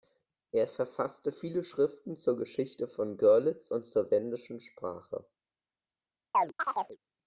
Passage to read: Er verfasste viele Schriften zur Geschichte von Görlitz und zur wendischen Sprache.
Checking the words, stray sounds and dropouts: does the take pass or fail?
fail